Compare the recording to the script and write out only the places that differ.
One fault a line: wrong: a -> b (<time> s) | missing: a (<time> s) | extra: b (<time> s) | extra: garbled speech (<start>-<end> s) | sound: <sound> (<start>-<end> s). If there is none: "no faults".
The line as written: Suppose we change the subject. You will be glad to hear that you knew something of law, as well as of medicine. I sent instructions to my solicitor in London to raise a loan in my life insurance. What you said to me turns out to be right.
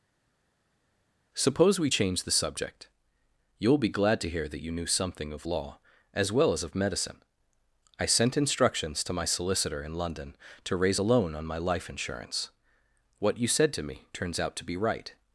wrong: in -> on (11.3 s)